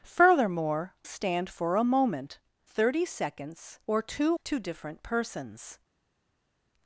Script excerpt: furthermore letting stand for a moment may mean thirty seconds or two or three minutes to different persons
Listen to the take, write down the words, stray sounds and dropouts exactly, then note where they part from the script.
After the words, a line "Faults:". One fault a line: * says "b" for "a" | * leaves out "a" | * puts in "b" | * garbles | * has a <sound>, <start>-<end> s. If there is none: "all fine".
furthermore stand for a moment thirty seconds or two to different persons
Faults:
* leaves out "letting"
* leaves out "may mean"
* leaves out "or three minutes"